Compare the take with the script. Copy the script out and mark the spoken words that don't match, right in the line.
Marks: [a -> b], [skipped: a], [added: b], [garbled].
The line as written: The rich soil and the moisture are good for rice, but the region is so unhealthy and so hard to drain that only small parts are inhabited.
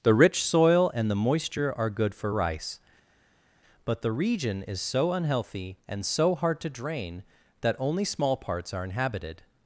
The rich soil and the moisture are good for rice, but the region is so unhealthy and so hard to drain that only small parts are inhabited.